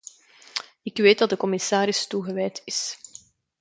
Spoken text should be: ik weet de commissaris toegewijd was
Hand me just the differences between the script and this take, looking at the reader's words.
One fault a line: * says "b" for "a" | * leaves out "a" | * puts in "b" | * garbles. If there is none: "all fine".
* puts in "dat"
* says "is" for "was"